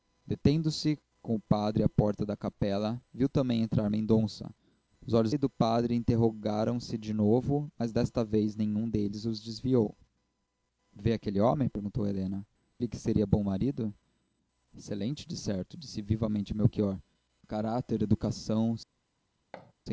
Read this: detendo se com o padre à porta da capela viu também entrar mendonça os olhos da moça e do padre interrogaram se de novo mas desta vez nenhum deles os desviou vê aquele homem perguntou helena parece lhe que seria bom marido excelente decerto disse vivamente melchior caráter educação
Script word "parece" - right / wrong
wrong